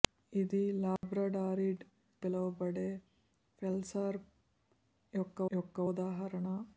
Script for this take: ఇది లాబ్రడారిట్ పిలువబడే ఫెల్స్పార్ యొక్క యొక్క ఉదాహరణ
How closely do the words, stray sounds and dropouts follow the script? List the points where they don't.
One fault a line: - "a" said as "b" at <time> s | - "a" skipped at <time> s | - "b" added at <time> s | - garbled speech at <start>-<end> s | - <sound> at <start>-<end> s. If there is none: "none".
- dropout at 1.0-1.0 s